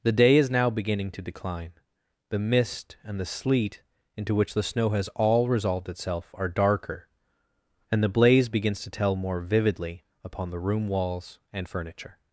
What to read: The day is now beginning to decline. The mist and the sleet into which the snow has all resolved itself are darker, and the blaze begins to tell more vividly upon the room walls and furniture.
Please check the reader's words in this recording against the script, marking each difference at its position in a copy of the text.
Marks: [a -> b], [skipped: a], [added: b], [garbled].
The day is now beginning to decline. The mist and the sleet into which the snow has all resolved itself are darker, and the blaze begins to tell more vividly upon the room walls and furniture.